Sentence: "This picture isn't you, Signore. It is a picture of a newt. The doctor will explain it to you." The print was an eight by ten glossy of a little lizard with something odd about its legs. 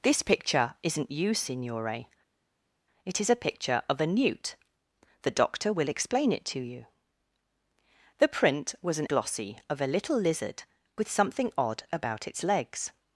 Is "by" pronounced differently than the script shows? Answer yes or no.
yes